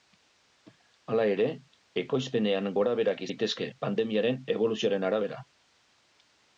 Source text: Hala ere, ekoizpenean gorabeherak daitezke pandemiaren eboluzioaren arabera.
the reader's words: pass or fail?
pass